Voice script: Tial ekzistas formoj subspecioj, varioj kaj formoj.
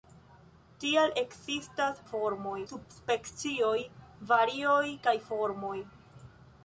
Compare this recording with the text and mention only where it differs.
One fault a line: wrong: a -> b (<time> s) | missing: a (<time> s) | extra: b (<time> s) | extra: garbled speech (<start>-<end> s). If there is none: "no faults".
no faults